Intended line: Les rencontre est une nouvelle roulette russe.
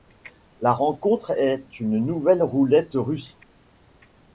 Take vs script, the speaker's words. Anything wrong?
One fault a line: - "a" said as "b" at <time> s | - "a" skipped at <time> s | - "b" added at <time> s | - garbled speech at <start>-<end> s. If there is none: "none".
- "Les" said as "La" at 0.6 s